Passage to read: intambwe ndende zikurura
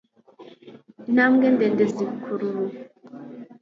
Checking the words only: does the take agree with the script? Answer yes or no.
yes